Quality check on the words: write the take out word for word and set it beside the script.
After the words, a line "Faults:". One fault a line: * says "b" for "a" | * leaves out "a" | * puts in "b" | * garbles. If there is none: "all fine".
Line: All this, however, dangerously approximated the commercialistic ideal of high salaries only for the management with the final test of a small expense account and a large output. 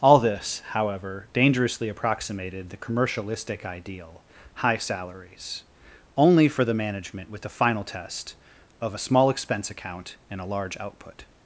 All this, however, dangerously approximated the commercialistic ideal high salaries only for the management with the final test of a small expense account and a large output.
Faults:
* leaves out "of"